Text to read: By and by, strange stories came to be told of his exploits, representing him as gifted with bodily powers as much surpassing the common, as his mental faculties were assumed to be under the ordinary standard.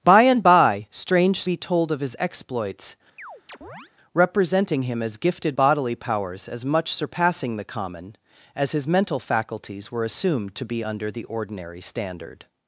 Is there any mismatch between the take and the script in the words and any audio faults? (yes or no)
yes